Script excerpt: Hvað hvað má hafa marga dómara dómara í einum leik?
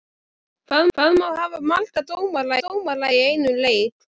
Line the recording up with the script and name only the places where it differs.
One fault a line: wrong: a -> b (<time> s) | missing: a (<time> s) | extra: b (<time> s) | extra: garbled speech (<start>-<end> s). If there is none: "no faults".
no faults